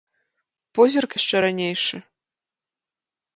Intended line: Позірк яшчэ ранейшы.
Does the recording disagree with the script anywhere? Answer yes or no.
no